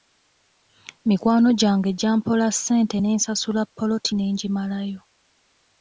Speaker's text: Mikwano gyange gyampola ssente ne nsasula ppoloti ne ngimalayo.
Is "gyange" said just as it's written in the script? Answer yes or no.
yes